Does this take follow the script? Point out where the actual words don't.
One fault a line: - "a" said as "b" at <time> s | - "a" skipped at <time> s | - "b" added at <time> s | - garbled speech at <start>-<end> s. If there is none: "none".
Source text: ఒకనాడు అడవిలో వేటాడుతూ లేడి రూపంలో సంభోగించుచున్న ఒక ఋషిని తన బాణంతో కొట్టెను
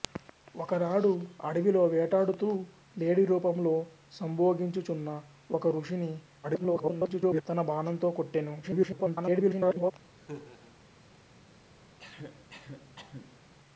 - garbled speech at 6.4-7.4 s
- garbled speech at 8.6-9.9 s